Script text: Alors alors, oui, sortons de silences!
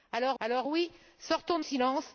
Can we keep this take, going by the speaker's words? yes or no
yes